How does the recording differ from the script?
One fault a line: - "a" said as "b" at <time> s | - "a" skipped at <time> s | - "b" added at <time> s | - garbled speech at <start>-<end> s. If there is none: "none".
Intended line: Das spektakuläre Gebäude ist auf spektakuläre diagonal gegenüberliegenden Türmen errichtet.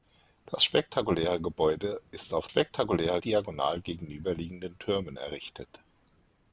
none